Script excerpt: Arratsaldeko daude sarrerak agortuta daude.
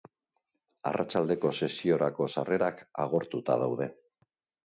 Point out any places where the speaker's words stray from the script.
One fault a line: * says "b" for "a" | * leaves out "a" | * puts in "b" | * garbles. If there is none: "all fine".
* says "sesiorako" for "daude"